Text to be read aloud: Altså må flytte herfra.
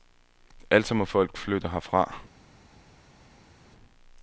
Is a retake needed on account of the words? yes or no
yes